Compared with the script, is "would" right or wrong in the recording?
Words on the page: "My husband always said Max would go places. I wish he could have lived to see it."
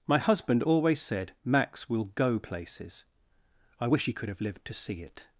wrong